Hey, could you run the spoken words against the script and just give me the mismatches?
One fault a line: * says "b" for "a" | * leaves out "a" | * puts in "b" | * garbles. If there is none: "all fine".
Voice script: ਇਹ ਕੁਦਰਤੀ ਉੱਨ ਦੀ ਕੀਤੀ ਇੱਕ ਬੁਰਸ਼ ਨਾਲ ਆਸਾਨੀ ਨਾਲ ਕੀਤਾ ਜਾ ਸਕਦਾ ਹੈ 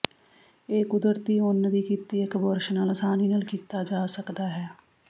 all fine